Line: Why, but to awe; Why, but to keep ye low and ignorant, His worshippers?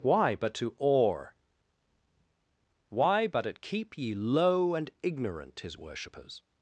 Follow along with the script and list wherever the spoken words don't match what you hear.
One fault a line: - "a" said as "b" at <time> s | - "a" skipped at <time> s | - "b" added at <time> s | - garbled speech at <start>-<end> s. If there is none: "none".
- "to" said as "at" at 3.5 s